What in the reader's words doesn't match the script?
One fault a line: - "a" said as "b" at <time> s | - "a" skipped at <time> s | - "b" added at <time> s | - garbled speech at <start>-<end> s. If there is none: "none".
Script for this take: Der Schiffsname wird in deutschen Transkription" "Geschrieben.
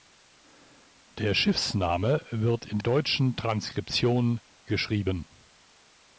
none